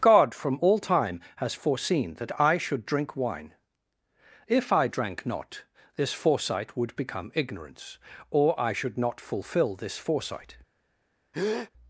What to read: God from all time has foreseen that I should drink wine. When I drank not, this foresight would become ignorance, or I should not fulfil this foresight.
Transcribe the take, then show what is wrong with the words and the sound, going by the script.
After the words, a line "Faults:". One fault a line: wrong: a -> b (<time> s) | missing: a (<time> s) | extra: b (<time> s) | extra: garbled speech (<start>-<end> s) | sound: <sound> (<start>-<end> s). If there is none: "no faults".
God from all time has foreseen that I should drink wine. If I drank not, this foresight would become ignorance, or I should not fulfil this foresight.
Faults:
wrong: When -> If (4.5 s)
sound: breath (11.3-11.7 s)